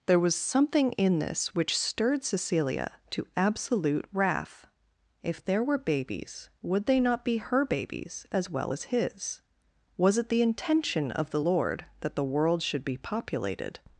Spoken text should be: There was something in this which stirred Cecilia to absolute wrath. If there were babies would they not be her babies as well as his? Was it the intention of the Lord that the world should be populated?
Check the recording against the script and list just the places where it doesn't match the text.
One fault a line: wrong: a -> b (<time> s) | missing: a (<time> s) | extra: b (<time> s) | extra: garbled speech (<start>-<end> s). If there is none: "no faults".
no faults